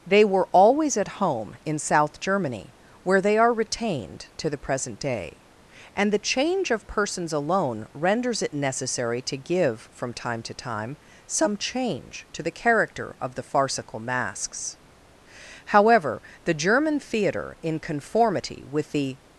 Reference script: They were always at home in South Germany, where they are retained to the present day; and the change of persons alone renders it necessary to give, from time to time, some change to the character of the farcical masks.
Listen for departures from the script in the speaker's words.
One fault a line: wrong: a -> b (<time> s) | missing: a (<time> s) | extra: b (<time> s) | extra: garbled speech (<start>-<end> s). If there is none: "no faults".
extra: However the German theatre in conformity with the (15.7 s)